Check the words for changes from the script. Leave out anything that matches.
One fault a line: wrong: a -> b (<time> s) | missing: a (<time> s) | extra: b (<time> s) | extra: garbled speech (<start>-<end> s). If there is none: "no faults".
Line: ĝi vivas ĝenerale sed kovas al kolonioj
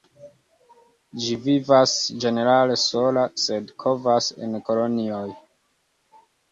extra: sola (2.8 s)
wrong: al -> en (4.5 s)